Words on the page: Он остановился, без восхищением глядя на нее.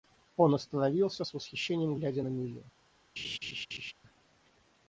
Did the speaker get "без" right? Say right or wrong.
wrong